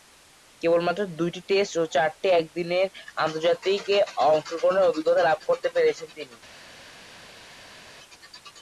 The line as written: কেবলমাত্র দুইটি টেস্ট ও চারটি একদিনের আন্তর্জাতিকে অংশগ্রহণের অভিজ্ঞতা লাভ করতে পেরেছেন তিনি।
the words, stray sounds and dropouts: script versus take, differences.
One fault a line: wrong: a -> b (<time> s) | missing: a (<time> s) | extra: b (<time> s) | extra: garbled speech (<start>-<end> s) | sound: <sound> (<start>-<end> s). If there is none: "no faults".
no faults